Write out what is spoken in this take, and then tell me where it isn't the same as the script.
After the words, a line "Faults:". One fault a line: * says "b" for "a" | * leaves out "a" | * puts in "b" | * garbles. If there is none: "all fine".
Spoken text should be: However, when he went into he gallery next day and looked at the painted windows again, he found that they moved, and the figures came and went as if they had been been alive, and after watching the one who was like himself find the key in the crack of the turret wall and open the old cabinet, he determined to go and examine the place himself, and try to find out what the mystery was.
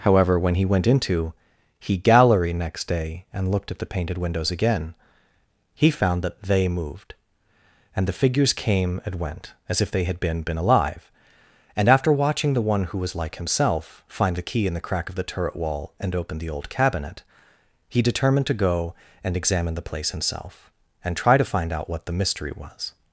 However, when he went into he gallery next day and looked at the painted windows again, he found that they moved, and the figures came and went as if they had been been alive, and after watching the one who was like himself find the key in the crack of the turret wall and open the old cabinet, he determined to go and examine the place himself, and try to find out what the mystery was.
Faults:
all fine